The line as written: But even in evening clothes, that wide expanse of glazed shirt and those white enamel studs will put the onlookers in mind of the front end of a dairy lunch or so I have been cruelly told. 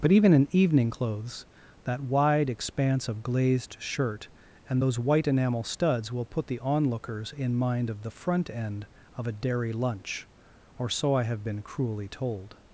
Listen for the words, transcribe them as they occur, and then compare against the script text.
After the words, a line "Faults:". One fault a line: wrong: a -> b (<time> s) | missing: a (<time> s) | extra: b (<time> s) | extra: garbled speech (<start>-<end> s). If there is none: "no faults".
But even in evening clothes, that wide expanse of glazed shirt and those white enamel studs will put the onlookers in mind of the front end of a dairy lunch or so I have been cruelly told.
Faults:
no faults